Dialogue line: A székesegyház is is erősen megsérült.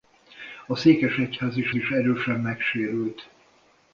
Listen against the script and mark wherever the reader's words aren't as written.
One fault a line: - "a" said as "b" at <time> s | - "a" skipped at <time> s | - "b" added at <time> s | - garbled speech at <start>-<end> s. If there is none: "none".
none